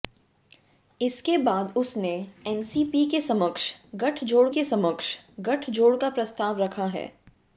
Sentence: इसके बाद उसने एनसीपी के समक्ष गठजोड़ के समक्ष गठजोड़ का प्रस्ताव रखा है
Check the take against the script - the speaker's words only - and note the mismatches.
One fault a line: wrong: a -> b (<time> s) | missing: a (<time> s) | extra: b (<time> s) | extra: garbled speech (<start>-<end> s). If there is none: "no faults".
no faults